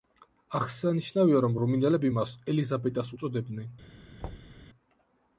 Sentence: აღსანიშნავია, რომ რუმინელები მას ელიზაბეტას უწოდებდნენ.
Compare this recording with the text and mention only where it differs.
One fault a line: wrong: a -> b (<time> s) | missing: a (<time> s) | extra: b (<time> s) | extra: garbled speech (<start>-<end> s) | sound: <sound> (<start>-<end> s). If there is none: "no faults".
sound: thud (4.2-4.6 s)